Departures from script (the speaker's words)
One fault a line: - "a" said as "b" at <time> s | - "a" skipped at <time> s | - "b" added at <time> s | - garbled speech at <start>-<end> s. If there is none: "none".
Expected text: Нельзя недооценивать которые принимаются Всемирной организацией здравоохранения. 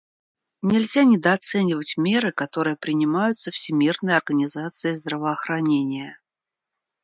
- "меры" added at 2.0 s